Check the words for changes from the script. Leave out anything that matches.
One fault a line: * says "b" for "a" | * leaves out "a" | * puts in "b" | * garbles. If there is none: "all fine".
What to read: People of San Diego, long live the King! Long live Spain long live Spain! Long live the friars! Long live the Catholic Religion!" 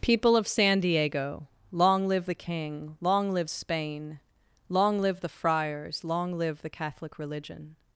* leaves out "Spain Long live"